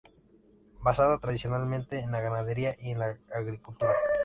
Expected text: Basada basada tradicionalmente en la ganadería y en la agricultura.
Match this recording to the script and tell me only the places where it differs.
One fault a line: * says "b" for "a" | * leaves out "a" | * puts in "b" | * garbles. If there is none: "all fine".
* leaves out "basada"